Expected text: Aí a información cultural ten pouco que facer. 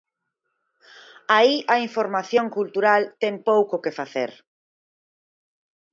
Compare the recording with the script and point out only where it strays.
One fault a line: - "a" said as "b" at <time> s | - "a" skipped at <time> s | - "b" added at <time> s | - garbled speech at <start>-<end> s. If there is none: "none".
none